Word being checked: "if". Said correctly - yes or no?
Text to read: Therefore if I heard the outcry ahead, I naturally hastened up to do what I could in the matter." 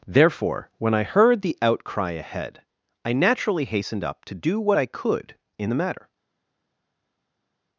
no